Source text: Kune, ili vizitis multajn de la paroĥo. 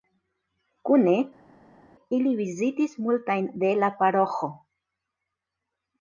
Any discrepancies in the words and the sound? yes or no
no